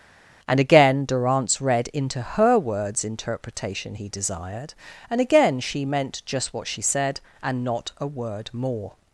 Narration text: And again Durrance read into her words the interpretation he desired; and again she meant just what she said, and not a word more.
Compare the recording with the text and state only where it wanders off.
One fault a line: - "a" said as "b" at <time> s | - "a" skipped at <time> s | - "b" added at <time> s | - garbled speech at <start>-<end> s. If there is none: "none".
- "the" skipped at 3.0 s